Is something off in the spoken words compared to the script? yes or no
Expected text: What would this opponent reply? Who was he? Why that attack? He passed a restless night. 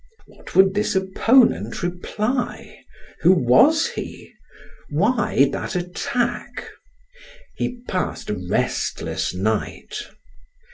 no